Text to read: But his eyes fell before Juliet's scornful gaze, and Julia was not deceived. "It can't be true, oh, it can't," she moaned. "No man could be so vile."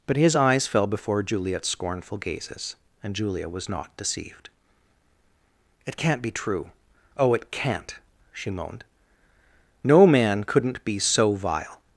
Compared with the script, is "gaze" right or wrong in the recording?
wrong